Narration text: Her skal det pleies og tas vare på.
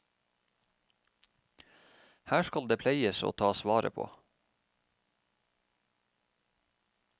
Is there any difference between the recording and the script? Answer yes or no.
no